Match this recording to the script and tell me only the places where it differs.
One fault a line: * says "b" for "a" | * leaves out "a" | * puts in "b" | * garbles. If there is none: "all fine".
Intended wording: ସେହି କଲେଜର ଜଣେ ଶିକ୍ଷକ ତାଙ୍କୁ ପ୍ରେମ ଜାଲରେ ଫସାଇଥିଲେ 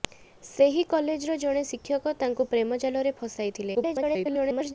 * garbles